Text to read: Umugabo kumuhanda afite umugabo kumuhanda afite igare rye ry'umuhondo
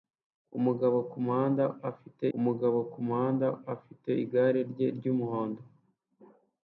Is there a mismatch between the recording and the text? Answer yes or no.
no